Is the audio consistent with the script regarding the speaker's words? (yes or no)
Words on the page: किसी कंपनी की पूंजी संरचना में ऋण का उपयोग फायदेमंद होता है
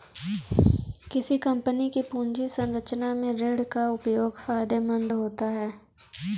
yes